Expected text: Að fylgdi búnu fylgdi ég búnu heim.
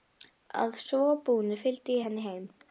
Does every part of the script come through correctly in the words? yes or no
no